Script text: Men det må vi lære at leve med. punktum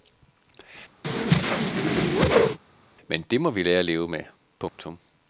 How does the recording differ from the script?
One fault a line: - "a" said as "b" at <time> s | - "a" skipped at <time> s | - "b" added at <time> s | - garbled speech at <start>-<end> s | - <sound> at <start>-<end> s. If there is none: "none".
- whoosh at 1.0-2.6 s
- dropout at 4.7-4.8 s